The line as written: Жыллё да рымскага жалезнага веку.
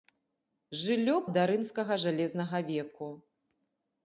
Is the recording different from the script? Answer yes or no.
no